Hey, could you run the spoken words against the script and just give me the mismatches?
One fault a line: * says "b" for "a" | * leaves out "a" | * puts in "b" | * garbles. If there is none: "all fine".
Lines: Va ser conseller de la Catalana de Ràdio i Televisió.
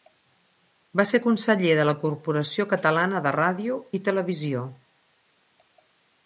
* puts in "Corporació"